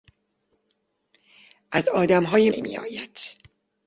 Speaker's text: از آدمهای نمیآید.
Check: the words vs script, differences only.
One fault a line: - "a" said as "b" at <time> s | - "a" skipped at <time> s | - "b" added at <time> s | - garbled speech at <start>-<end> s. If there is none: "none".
none